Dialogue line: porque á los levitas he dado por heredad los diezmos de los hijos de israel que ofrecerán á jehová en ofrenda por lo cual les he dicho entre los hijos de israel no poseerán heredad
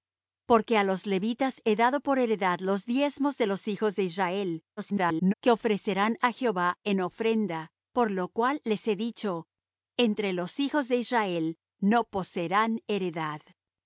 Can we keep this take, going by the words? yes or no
no